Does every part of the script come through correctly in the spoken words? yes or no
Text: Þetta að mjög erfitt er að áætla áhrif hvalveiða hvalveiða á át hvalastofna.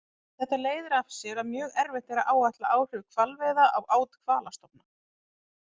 no